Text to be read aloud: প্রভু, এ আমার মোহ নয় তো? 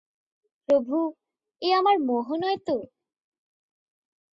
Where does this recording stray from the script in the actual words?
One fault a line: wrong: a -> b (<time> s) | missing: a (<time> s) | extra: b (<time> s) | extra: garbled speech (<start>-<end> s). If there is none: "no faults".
no faults